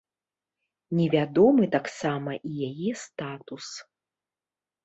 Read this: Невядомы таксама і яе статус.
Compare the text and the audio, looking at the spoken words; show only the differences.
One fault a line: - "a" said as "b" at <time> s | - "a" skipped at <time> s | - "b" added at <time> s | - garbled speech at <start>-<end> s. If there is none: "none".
none